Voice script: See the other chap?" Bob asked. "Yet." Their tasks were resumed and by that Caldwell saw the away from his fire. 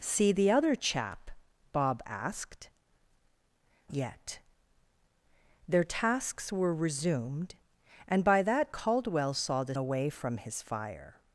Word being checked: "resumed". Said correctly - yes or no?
yes